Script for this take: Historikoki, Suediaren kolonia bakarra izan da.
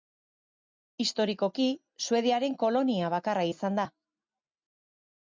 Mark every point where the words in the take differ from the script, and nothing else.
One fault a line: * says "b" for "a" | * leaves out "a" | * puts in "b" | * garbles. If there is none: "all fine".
all fine